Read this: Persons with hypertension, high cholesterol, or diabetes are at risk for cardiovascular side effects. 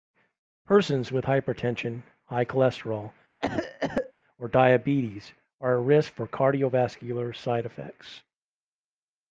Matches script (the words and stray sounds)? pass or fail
fail